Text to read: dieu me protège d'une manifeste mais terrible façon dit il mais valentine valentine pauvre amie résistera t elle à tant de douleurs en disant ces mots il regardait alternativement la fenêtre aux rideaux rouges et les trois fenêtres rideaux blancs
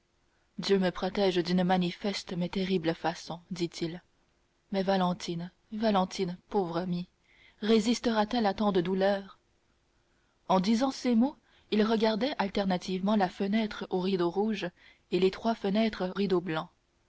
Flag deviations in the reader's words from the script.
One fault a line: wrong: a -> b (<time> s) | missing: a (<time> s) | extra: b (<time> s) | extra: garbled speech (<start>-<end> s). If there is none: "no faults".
no faults